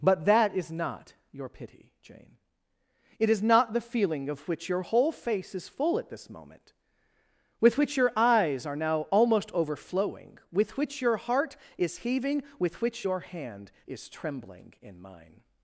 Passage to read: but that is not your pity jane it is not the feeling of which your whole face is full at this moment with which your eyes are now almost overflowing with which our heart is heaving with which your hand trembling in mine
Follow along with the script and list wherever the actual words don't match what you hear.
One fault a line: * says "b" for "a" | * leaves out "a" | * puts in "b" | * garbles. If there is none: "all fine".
* says "your" for "our"
* puts in "is"